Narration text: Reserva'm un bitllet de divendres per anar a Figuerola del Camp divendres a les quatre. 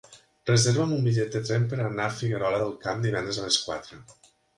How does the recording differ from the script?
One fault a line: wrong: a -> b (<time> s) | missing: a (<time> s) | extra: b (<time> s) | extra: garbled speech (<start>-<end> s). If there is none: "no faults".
wrong: divendres -> tren (1.5 s)